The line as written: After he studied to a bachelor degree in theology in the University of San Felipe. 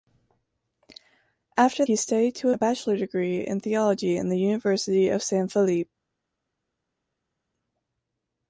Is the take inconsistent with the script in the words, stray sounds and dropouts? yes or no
no